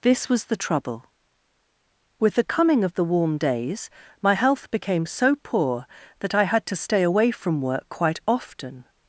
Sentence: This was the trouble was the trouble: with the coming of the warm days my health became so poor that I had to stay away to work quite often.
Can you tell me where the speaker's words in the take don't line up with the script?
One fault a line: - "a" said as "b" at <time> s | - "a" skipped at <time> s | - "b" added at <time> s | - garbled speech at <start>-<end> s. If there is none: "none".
- "was the trouble" skipped at 1.1 s
- "to" said as "from" at 7.3 s